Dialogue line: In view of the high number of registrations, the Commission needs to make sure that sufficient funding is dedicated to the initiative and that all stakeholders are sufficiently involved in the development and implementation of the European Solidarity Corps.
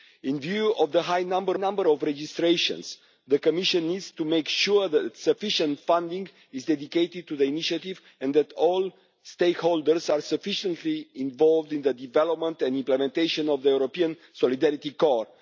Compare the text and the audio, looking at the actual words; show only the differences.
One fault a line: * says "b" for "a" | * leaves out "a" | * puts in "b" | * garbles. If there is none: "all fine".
* puts in "number"